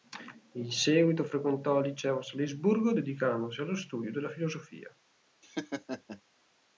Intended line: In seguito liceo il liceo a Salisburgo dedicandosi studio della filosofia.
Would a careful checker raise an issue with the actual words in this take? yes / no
yes